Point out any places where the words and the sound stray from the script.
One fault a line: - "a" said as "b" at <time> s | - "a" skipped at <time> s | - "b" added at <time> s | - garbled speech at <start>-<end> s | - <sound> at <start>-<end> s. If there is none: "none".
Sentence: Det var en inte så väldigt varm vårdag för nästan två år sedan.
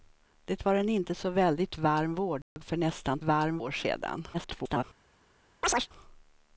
- dropout at 2.4-2.6 s
- "två" said as "varm" at 3.2 s
- garbled speech at 4.3-4.8 s
- chirp at 5.6-5.9 s